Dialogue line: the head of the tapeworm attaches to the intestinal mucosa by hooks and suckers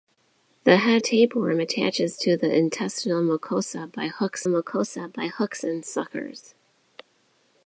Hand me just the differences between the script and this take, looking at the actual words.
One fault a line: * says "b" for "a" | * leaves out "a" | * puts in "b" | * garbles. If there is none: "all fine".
* leaves out "of the"
* puts in "mucosa by hooks"